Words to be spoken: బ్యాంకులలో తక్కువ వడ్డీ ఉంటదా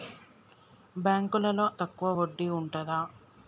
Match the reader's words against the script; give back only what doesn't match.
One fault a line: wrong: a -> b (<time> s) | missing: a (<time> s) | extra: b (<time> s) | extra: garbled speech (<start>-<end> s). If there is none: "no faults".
no faults